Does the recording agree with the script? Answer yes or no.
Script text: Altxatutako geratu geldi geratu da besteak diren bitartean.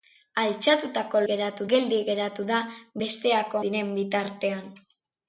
yes